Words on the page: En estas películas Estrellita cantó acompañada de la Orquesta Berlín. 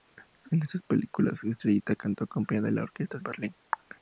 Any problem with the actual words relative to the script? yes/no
no